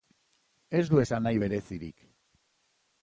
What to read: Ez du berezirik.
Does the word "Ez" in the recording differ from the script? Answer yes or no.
no